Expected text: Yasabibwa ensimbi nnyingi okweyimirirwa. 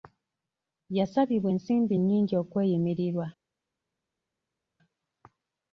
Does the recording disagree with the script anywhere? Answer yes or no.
no